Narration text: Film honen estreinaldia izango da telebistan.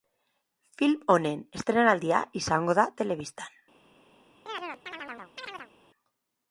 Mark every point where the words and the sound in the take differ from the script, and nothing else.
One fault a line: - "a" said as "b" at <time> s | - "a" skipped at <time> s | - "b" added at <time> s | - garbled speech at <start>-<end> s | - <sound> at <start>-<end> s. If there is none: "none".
- chirp at 4.5-5.7 s